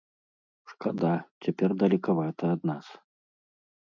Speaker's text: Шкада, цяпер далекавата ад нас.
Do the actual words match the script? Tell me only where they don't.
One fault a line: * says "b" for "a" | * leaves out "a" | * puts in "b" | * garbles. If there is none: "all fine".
all fine